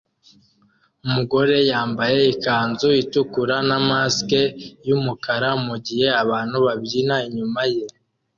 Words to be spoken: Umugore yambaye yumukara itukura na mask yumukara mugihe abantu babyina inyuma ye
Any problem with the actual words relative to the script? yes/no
yes